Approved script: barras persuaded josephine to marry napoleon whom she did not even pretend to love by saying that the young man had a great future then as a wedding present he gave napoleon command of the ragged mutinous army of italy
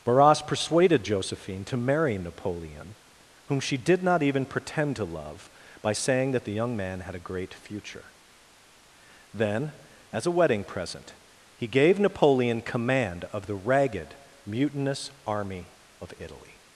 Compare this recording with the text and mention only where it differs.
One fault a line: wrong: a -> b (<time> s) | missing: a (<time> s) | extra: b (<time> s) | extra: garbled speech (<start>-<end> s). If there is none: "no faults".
no faults